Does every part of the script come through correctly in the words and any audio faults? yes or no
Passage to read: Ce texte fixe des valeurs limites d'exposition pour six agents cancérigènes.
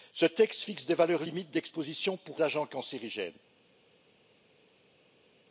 no